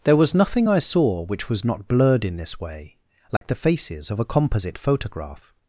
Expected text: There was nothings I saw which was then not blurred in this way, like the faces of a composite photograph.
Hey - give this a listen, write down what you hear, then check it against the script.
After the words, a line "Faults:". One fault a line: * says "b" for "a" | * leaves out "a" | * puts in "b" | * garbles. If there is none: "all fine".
There was nothing I saw which was not blurred in this way, like the faces of a composite photograph.
Faults:
* says "nothing" for "nothings"
* leaves out "then"